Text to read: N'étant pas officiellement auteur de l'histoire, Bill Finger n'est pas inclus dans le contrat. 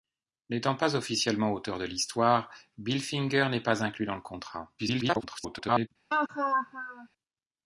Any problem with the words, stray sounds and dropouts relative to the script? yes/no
yes